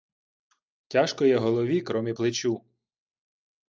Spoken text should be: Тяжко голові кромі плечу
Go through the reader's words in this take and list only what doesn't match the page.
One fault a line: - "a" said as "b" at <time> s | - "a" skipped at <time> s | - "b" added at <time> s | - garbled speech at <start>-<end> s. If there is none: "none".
- "є" added at 1.2 s